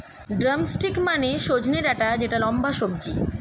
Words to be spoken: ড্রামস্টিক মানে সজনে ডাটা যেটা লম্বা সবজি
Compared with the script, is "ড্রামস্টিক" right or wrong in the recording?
right